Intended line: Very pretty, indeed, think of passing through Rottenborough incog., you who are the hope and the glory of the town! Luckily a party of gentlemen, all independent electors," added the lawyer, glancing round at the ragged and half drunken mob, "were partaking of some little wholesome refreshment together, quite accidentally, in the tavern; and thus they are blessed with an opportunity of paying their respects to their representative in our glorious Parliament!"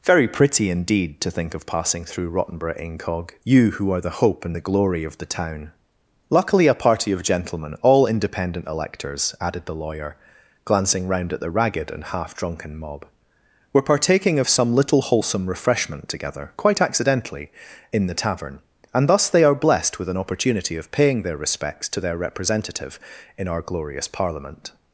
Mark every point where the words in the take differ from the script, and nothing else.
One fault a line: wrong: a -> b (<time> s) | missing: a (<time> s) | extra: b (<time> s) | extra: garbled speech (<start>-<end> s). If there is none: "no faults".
extra: to (1.2 s)